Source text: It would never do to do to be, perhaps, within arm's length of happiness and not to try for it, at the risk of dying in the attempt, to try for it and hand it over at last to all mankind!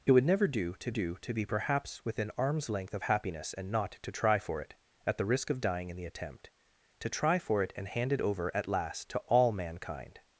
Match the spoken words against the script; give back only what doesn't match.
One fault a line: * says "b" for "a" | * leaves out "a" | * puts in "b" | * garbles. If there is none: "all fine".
all fine